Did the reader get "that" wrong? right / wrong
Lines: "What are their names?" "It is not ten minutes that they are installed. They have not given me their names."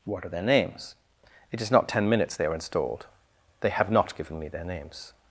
wrong